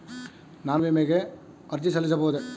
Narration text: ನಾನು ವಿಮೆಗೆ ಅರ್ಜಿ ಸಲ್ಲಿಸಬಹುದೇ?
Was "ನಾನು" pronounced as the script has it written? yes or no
yes